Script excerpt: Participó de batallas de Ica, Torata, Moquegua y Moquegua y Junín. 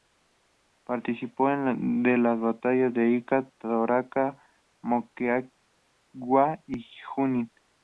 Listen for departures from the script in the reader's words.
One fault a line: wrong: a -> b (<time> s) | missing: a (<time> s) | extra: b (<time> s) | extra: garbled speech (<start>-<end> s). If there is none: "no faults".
extra: las (2.2 s)
missing: Moquegua y (6.8 s)